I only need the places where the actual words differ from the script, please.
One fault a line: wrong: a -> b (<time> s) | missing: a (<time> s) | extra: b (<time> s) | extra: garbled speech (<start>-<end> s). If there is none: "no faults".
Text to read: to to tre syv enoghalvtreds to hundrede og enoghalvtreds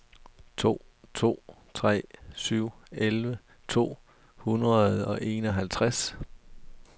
wrong: enoghalvtreds -> elleve (2.9 s)